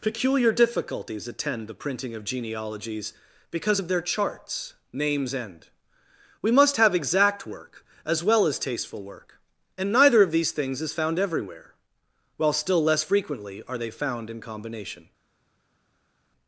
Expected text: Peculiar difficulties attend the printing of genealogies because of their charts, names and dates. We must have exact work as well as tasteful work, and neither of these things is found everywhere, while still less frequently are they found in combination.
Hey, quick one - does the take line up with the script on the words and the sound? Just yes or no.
no